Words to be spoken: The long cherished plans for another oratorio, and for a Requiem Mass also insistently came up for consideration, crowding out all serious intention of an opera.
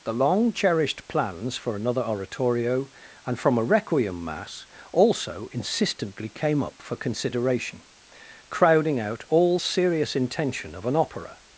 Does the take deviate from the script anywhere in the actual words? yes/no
yes